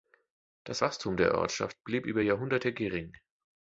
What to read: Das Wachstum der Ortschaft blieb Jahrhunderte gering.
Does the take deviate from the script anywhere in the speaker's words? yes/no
yes